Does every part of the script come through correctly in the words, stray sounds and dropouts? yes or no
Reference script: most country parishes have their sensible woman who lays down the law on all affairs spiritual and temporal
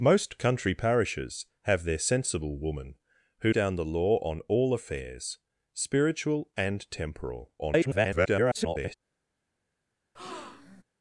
no